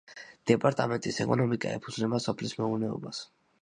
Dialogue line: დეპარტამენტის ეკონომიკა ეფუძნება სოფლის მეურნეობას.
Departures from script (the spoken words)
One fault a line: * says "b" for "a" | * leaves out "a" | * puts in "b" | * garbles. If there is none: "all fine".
all fine